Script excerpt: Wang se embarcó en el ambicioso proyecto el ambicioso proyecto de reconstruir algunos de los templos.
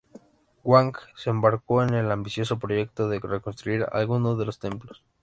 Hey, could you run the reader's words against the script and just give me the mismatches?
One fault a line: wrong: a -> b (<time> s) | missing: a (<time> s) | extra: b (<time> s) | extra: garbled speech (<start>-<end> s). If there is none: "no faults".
missing: el ambicioso proyecto (3.1 s)